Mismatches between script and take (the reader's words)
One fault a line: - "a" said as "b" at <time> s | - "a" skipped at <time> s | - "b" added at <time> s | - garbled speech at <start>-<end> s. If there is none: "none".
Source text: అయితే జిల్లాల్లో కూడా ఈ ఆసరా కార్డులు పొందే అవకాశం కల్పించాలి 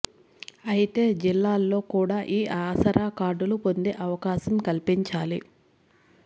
none